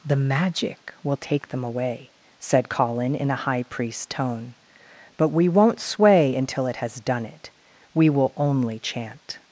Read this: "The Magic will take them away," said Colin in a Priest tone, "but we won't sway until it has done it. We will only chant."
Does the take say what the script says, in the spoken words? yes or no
no